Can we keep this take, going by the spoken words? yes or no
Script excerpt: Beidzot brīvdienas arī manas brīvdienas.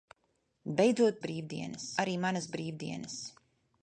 yes